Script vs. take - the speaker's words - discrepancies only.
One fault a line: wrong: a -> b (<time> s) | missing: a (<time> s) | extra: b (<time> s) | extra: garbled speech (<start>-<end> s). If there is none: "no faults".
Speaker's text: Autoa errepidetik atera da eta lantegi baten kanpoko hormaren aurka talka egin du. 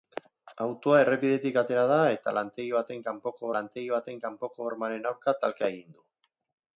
extra: lantegi baten kanpoko (3.6 s)